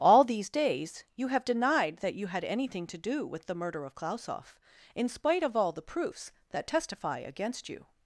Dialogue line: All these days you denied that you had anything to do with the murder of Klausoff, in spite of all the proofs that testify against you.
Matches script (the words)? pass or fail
fail